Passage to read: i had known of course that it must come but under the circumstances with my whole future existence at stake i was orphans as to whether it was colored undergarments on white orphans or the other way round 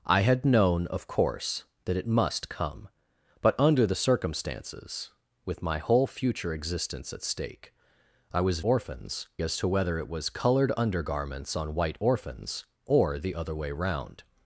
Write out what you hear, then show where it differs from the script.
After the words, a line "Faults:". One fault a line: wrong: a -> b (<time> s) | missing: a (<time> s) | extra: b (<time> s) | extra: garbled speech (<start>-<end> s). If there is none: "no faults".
i had known of course that it must come but under the circumstances with my whole future existence at stake i was orphans as to whether it was colored undergarments on white orphans or the other way round
Faults:
no faults